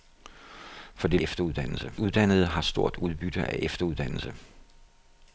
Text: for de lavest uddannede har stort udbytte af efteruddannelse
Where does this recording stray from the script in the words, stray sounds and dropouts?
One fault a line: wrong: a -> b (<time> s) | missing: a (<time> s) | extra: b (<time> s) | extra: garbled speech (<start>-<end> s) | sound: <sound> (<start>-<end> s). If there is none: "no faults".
wrong: lavest -> efteruddannelse (1.2 s)